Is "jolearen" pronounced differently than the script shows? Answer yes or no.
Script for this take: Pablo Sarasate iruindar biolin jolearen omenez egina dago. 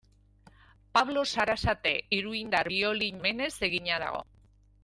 yes